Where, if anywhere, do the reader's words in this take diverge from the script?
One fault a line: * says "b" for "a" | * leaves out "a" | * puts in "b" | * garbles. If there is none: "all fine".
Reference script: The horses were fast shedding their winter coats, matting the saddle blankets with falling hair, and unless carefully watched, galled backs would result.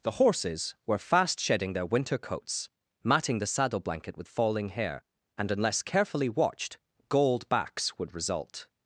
* says "blanket" for "blankets"